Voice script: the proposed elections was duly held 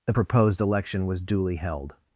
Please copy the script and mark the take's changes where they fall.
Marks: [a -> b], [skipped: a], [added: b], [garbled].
the proposed [elections -> election] was duly held